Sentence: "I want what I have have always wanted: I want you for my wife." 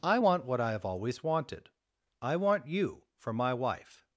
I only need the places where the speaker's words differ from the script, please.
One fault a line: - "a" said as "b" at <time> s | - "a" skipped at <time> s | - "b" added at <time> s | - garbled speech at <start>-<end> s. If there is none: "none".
- "have" skipped at 0.8 s